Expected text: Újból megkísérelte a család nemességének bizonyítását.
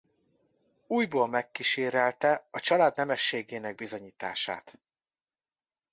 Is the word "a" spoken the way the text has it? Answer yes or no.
yes